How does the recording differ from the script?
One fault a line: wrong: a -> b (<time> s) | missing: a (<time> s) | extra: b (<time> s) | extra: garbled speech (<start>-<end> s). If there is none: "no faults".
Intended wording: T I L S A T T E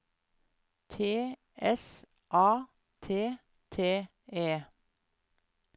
missing: I L (1.4 s)